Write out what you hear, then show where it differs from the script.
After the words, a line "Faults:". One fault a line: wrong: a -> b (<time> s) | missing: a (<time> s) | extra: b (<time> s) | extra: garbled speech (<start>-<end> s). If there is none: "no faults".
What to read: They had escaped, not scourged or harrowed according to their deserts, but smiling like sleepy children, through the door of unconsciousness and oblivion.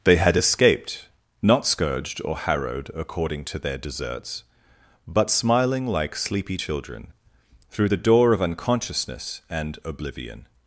They had escaped, not scourged or harrowed according to their deserts, but smiling like sleepy children, through the door of unconsciousness and oblivion.
Faults:
no faults